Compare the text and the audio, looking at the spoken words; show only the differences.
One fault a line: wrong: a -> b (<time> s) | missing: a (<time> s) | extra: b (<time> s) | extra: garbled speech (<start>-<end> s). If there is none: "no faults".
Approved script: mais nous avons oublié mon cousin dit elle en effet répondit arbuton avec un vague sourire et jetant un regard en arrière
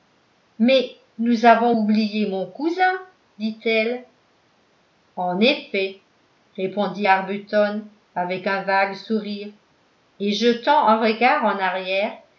no faults